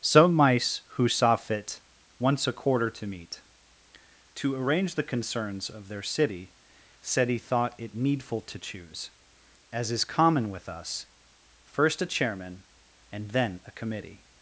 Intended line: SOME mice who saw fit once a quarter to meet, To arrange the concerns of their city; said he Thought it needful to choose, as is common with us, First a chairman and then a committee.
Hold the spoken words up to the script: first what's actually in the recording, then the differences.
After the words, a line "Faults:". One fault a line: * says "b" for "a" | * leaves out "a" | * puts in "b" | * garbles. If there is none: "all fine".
SOME mice who saw fit once a quarter to meet, To arrange the concerns of their city; said he Thought it needful to choose, as is common with us, First a chairman and then a committee.
Faults:
all fine